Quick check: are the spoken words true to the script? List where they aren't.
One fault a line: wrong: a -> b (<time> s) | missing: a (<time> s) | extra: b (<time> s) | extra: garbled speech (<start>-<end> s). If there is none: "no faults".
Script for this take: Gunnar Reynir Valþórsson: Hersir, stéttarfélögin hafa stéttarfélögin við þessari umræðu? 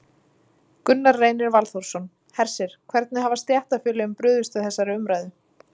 wrong: stéttarfélögin -> hvernig (3.0 s)
extra: brugðist (4.2 s)